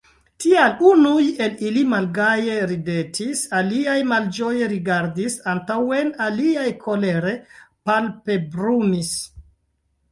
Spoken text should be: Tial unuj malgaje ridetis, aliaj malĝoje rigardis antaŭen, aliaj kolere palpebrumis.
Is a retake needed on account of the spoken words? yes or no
yes